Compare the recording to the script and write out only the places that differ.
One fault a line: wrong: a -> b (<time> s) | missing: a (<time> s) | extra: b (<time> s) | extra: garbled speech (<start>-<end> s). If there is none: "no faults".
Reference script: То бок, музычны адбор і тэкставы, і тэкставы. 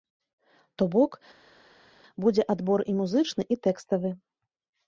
wrong: музычны -> будзе (2.2 s)
wrong: тэкставы -> музычны (3.0 s)